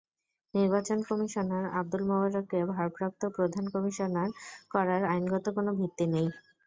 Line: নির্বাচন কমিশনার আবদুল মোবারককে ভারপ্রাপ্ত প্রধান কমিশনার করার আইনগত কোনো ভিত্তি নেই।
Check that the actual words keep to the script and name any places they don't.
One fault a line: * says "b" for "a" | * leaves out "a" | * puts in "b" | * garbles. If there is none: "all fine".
all fine